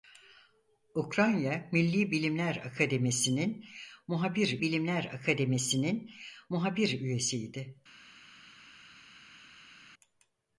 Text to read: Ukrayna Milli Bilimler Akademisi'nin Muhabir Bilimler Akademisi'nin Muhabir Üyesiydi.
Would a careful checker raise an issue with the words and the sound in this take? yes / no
no